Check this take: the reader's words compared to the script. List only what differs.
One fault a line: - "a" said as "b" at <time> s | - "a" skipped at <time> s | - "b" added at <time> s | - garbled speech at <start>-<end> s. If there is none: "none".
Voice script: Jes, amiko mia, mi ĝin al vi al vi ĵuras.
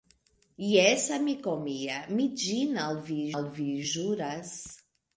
none